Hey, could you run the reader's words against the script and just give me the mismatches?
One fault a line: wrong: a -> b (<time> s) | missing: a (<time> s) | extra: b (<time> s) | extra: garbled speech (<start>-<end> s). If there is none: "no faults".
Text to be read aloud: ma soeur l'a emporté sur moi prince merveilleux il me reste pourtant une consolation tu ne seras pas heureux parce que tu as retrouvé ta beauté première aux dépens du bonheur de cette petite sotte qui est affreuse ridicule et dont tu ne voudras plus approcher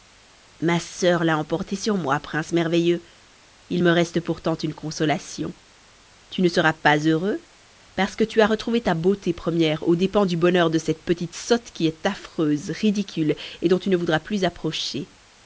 no faults